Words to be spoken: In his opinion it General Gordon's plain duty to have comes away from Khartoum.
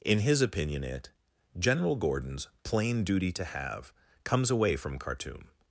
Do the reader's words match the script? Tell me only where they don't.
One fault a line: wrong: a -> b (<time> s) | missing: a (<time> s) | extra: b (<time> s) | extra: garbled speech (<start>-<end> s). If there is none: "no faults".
no faults